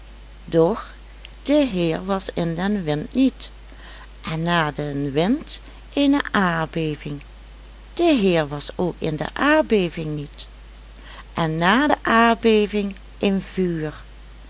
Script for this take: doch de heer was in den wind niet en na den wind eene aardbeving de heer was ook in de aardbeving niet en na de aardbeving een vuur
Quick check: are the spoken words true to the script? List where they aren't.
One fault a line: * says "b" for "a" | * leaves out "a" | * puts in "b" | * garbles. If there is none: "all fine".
all fine